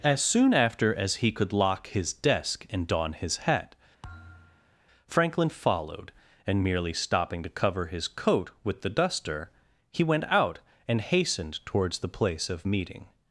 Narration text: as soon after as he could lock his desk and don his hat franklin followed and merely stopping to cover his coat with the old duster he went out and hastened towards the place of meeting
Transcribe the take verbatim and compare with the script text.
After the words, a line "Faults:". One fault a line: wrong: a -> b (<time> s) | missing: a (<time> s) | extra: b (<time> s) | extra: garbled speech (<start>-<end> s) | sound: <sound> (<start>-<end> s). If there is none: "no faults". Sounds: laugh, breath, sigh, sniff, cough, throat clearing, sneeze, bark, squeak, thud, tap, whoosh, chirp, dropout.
as soon after as he could lock his desk and don his hat franklin followed and merely stopping to cover his coat with the duster he went out and hastened towards the place of meeting
Faults:
sound: thud (4.0-4.8 s)
missing: old (8.9 s)